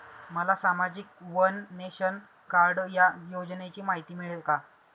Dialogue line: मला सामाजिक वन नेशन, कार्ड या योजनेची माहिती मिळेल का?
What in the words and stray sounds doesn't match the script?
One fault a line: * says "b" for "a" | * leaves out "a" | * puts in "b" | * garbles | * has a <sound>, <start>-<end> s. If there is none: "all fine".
all fine